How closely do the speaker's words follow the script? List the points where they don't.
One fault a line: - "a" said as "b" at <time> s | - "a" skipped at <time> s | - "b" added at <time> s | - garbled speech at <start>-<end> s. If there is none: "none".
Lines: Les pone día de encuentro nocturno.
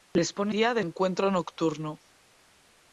none